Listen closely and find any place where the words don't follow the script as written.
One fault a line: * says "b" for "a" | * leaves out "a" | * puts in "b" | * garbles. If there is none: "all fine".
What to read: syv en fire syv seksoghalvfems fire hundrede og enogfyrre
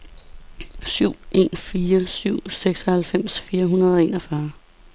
all fine